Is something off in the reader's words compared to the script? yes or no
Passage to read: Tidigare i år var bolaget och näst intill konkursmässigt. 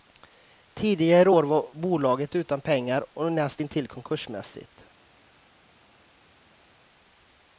yes